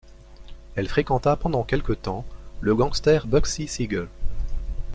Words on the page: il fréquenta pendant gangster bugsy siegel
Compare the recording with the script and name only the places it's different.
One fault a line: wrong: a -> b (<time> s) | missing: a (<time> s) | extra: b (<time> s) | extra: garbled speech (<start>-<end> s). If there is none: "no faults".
wrong: il -> elle (0.7 s)
extra: quelque temps le (1.6 s)